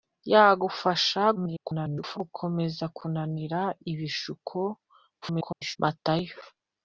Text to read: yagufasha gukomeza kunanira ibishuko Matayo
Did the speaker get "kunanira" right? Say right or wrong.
right